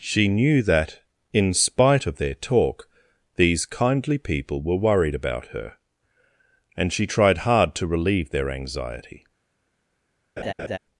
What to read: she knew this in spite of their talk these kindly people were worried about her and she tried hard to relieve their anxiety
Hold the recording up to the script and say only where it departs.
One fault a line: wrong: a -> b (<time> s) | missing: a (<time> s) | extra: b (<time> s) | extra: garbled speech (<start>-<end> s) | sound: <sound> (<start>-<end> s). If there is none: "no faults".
wrong: this -> that (0.6 s)
sound: laugh (10.4-10.8 s)